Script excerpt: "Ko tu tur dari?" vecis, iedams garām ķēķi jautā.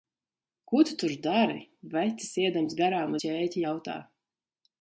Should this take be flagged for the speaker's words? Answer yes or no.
no